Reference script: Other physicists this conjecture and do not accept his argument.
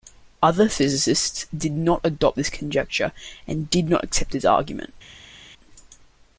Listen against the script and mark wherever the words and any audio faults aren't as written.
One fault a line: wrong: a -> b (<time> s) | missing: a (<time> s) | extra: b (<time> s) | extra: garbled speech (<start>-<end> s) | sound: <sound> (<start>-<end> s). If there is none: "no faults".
extra: did not adopt (1.6 s)
wrong: do -> did (3.7 s)